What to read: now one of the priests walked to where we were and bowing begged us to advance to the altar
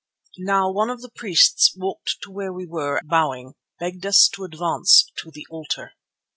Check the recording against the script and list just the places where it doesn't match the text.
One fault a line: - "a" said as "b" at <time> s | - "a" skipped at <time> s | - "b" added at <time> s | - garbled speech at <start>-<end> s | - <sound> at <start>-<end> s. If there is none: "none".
- "and" skipped at 3.0 s